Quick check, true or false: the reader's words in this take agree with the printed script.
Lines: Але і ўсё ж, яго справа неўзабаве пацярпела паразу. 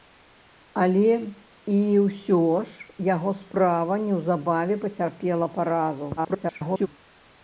false